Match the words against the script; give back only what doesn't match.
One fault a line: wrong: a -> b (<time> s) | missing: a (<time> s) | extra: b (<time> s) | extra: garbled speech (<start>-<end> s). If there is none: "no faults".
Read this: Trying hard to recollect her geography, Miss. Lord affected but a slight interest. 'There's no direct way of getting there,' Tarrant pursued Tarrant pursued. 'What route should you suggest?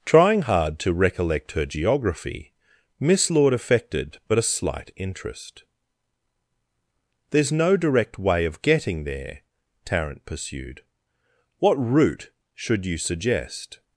missing: Tarrant pursued (10.8 s)